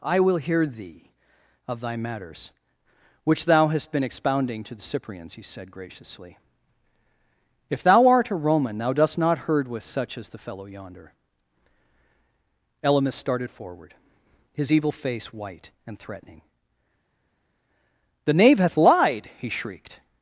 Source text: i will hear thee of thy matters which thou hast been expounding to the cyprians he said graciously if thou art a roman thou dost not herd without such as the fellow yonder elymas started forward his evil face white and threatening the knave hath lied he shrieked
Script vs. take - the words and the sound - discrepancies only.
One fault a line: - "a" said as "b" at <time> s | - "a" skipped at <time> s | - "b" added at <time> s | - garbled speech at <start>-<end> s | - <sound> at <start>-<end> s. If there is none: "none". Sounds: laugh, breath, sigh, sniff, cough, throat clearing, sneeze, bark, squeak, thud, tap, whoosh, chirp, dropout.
- "without" said as "with" at 9.7 s